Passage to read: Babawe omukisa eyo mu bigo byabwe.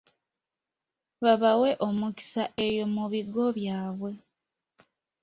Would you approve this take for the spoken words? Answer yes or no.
yes